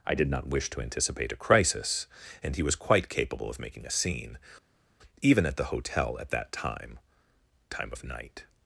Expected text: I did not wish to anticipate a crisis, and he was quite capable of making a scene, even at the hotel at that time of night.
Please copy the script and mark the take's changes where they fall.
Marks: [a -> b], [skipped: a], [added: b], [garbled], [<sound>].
I did not wish to anticipate a crisis, and he was quite capable of making a scene, even at the hotel at that time [added: time] of night.